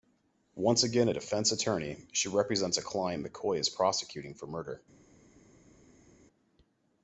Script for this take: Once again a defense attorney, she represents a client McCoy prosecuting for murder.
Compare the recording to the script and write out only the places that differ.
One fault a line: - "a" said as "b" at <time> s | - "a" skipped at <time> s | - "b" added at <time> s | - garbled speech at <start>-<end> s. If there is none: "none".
- "is" added at 3.6 s